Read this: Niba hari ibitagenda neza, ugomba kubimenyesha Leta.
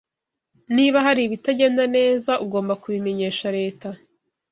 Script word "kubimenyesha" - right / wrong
right